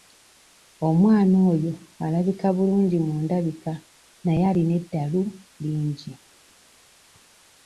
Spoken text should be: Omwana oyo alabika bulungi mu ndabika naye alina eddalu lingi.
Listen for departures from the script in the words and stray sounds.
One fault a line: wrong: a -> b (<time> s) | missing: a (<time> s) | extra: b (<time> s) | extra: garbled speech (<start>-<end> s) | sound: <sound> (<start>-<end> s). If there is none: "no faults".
no faults